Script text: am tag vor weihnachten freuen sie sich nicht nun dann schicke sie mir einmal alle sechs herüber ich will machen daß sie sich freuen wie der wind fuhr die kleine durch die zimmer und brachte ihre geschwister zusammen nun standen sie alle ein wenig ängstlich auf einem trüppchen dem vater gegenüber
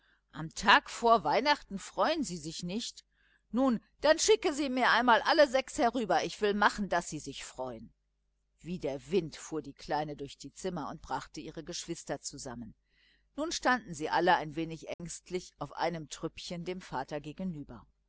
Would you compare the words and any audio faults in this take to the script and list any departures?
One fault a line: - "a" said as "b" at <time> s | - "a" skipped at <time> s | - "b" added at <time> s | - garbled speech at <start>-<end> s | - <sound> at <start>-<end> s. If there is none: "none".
- dropout at 14.9-15.0 s